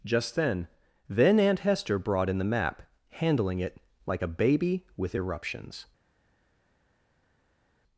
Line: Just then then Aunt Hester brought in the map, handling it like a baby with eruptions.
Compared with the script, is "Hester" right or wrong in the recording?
right